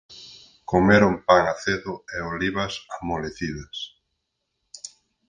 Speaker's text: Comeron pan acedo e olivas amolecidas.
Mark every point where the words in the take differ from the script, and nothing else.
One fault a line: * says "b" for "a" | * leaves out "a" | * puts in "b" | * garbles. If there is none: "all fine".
all fine